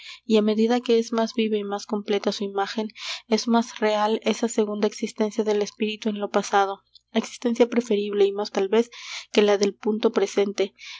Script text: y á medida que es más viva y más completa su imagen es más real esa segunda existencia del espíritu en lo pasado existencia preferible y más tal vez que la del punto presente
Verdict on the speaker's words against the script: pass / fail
pass